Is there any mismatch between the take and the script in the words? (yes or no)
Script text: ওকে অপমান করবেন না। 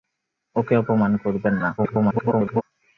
yes